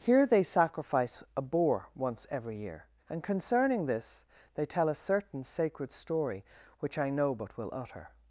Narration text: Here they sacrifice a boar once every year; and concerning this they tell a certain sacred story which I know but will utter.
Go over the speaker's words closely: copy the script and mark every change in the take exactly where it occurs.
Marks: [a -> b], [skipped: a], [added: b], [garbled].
Here they sacrifice a boar once every year; and concerning this they tell a certain sacred story which I know but will utter.